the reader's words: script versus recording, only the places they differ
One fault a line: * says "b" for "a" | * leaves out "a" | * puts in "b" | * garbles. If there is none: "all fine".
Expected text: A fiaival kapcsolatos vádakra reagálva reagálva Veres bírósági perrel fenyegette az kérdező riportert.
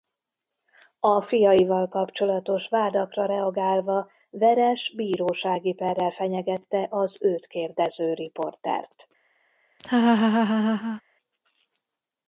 * leaves out "reagálva"
* puts in "őt"